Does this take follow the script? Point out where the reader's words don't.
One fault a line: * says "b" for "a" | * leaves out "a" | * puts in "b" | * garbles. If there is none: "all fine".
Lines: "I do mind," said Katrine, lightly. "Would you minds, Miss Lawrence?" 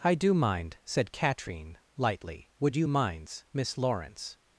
all fine